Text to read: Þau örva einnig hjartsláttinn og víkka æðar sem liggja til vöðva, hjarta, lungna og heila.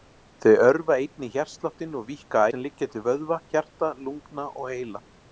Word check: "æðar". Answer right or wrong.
wrong